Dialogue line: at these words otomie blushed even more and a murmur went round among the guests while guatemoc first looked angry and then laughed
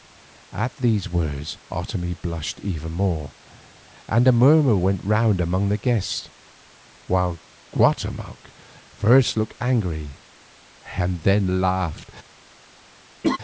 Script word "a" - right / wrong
right